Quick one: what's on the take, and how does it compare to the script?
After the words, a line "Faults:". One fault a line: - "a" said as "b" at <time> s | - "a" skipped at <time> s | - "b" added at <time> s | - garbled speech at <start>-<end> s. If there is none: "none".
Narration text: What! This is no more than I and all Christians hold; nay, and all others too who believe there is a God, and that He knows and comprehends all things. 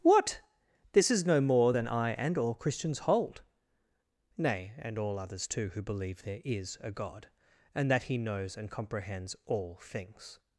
What! This is no more than I and all Christians hold; nay, and all others too who believe there is a God, and that He knows and comprehends all things.
Faults:
none